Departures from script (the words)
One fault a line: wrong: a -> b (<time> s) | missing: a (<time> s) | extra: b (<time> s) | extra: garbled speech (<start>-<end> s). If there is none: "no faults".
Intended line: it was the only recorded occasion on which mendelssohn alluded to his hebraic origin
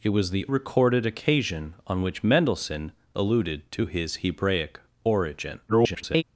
missing: only (0.5 s)
extra: garbled speech (5.7-6.2 s)